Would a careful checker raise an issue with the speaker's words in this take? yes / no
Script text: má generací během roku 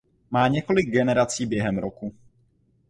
yes